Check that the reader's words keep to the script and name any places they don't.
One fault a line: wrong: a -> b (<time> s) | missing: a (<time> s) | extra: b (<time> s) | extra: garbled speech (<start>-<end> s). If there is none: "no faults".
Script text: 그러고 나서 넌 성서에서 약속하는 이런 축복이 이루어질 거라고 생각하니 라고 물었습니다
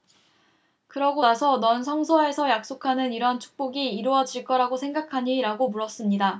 no faults